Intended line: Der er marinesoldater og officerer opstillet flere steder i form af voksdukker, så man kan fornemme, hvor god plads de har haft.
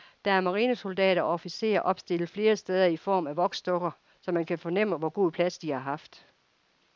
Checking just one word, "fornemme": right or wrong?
right